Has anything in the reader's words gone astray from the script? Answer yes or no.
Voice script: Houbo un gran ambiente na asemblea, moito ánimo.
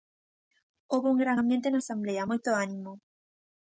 no